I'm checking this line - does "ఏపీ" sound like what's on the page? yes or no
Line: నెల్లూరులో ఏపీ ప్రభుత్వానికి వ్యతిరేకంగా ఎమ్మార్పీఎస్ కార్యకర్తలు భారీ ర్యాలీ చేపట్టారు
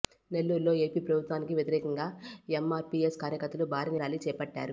yes